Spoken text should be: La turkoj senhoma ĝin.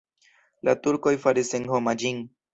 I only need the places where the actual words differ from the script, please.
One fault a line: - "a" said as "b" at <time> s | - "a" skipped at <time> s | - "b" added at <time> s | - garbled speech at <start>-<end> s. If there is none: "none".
- "faris" added at 1.3 s